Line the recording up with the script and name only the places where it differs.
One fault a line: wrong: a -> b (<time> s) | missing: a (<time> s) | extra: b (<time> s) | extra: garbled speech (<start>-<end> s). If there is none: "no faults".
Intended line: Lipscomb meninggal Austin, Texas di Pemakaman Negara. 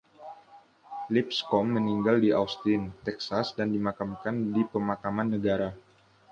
extra: di (2.2 s)
extra: dan dimakamkan (3.5 s)